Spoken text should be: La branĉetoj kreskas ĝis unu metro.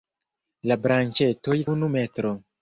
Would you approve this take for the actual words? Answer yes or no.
no